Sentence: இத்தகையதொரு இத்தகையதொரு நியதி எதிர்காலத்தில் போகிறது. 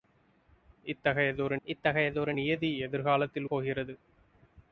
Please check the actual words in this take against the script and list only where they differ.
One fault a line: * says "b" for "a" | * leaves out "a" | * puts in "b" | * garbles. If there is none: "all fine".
all fine